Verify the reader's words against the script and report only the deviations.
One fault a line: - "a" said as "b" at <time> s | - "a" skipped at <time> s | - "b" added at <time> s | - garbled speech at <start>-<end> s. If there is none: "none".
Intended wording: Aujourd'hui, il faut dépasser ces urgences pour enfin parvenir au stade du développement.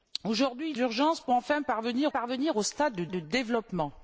- "faut dépasser ces" skipped at 0.8 s
- "parvenir" added at 2.1 s
- "du" added at 3.1 s